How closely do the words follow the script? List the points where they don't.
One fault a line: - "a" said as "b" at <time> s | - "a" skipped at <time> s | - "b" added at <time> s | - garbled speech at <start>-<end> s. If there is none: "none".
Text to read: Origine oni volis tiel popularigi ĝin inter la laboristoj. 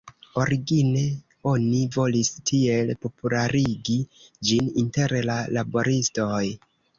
none